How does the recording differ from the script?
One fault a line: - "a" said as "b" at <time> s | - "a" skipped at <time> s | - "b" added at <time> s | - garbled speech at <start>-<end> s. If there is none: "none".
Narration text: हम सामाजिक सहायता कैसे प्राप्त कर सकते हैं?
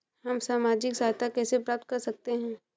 none